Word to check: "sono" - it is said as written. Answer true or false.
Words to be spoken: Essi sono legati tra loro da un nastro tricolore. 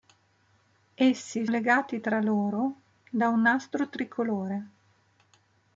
false